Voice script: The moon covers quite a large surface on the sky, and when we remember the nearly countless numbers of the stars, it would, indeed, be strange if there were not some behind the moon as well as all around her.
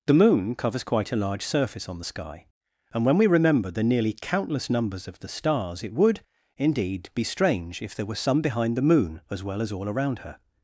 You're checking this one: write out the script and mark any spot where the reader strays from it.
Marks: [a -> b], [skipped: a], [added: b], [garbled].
The moon covers quite a large surface on the sky, and when we remember the nearly countless numbers of the stars, it would, indeed, be strange if there were [skipped: not] some behind the moon as well as all around her.